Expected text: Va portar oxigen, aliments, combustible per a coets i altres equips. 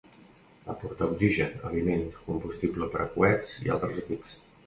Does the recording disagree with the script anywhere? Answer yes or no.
no